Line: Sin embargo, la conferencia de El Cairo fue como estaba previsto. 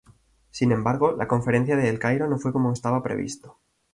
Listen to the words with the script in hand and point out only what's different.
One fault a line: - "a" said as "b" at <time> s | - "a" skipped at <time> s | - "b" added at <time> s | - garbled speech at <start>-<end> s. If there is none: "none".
- "no" added at 2.3 s